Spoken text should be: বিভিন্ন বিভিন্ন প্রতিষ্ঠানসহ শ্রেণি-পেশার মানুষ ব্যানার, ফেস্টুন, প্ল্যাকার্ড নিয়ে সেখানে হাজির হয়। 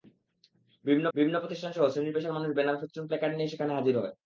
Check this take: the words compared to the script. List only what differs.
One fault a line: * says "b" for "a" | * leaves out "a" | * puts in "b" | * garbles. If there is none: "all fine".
all fine